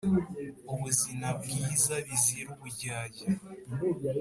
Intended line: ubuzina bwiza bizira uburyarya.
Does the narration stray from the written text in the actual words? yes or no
no